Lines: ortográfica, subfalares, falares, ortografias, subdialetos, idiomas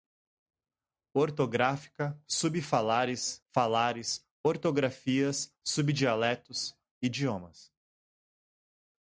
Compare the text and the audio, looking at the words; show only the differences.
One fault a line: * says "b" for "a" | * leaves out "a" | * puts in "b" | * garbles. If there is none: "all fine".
all fine